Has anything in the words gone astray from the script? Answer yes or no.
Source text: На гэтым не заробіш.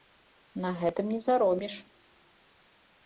no